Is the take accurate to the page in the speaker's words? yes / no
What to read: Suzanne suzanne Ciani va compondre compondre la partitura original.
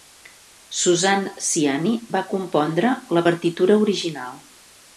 no